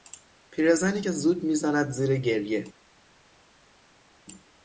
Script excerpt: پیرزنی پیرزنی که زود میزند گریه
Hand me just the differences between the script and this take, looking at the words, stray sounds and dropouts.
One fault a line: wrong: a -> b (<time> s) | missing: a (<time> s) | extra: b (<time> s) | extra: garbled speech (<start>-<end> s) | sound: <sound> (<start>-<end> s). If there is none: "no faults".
missing: پیرزنی (1.0 s)
extra: زیر (1.9 s)